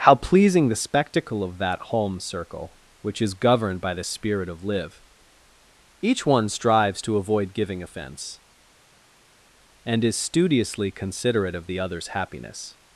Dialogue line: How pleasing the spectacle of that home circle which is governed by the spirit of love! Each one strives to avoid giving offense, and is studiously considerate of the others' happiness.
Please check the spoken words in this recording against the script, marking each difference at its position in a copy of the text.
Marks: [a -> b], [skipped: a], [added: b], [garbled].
How pleasing the spectacle of that home circle which is governed by the spirit of [love! -> live] Each one strives to avoid giving offense, and is studiously considerate of the others' happiness.